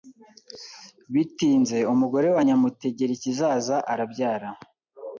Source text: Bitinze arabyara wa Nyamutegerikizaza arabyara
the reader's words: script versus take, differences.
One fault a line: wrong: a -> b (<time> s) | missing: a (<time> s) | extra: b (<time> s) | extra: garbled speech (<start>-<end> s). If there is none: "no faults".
wrong: arabyara -> umugore (1.9 s)